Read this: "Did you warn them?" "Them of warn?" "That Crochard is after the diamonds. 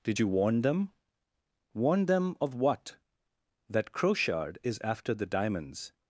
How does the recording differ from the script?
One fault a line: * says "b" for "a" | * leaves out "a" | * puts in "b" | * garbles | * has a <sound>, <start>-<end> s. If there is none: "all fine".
* puts in "Warn"
* says "what" for "warn"